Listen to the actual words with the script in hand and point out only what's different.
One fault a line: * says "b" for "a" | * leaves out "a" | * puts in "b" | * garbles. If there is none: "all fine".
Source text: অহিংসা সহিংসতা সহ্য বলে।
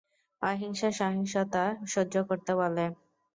* puts in "করতে"